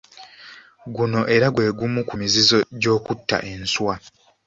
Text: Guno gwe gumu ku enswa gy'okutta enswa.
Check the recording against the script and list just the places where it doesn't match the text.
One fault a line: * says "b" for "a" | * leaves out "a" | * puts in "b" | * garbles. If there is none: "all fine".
* puts in "era"
* says "mizizo" for "enswa"